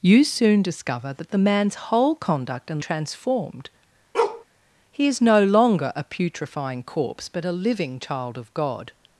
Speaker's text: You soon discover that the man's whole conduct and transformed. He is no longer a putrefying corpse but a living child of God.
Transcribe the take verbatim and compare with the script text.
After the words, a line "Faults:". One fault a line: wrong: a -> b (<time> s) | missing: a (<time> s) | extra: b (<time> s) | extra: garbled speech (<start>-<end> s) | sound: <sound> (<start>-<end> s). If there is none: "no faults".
You soon discover that the man's whole conduct and transformed. He is no longer a putrefying corpse but a living child of God.
Faults:
sound: bark (4.1-4.4 s)